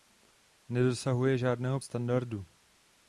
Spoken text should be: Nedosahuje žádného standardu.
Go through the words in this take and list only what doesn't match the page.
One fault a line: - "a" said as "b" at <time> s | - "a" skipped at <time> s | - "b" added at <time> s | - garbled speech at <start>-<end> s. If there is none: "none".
none